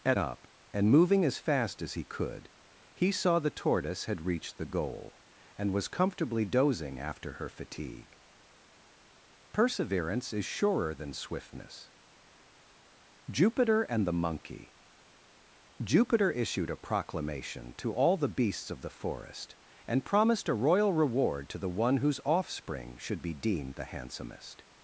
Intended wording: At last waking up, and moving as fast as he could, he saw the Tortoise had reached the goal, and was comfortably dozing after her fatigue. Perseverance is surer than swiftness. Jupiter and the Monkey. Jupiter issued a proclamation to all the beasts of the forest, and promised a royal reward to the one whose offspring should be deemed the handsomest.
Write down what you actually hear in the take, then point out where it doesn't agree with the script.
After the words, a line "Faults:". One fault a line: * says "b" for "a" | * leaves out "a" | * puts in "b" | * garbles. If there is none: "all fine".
At up, and moving as fast as he could, he saw the Tortoise had reached the goal, and was comfortably dozing after her fatigue. Perseverance is surer than swiftness. Jupiter and the Monkey. Jupiter issued a proclamation to all the beasts of the forest, and promised a royal reward to the one whose offspring should be deemed the handsomest.
Faults:
* leaves out "last waking"